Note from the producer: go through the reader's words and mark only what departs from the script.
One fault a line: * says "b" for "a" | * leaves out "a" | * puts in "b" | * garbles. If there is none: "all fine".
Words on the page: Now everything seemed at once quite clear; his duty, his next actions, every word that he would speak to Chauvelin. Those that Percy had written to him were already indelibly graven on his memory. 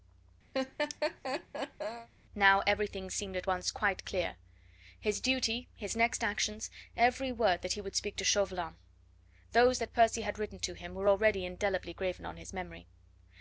all fine